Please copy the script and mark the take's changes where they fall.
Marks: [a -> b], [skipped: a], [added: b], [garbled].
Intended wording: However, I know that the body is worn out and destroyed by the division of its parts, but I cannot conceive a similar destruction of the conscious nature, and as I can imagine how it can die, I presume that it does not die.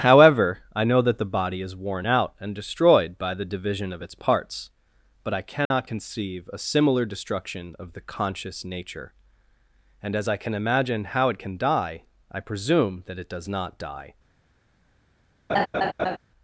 However, I know that the body is worn out and destroyed by the division of its parts, but I cannot conceive a similar destruction of the conscious nature, and as I can imagine how it can die, I presume that it does not die.